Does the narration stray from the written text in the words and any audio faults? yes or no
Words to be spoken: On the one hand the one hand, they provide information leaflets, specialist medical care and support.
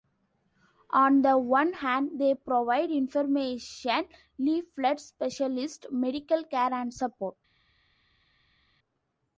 yes